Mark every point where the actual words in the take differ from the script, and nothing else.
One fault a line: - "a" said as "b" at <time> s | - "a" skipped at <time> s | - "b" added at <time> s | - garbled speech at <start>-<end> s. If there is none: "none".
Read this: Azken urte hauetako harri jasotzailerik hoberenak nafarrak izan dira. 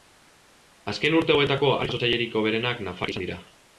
none